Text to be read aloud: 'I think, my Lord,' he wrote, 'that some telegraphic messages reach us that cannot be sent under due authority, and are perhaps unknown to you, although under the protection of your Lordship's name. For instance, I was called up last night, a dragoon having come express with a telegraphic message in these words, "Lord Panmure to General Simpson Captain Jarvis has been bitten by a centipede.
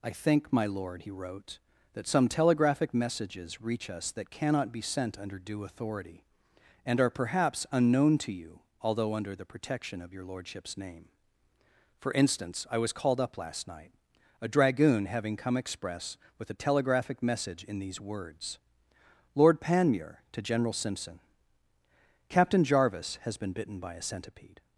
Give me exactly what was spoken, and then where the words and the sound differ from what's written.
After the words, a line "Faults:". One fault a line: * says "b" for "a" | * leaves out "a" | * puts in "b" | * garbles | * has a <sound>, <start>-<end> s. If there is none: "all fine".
'I think, my Lord,' he wrote, 'that some telegraphic messages reach us that cannot be sent under due authority, and are perhaps unknown to you, although under the protection of your Lordship's name. For instance, I was called up last night, a dragoon having come express with a telegraphic message in these words, "Lord Panmure to General Simpson Captain Jarvis has been bitten by a centipede.
Faults:
all fine